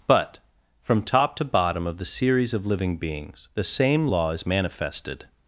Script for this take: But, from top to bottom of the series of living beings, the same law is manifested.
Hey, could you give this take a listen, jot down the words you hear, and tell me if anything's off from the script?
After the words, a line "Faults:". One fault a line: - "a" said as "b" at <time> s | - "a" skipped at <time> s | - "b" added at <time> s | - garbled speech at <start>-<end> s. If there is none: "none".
But, from top to bottom of the series of living beings, the same law is manifested.
Faults:
none